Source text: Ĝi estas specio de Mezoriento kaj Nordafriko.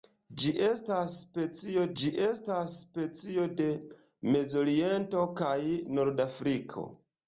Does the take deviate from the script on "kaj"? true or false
false